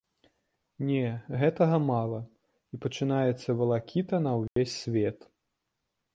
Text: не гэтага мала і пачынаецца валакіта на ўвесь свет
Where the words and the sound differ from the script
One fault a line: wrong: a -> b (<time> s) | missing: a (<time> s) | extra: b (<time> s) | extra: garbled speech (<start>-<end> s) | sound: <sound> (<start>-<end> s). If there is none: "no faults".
sound: dropout (4.5-4.6 s)